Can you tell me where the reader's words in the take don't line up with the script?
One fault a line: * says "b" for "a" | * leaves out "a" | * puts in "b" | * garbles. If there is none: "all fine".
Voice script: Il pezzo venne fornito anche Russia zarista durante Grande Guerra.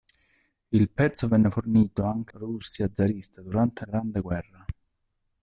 all fine